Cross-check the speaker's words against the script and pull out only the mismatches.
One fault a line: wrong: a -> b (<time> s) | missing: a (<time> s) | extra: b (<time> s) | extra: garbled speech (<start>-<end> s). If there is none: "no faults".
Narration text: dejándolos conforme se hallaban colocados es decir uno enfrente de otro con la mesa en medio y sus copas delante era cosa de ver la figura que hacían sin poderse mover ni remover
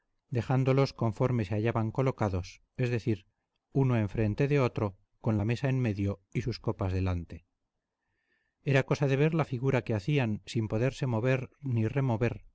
no faults